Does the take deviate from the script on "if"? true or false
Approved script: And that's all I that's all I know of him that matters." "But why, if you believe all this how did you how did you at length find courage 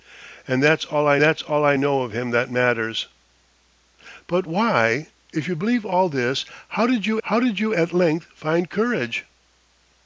false